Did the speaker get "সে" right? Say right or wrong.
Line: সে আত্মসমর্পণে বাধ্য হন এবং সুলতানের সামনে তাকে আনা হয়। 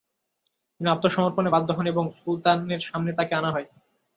wrong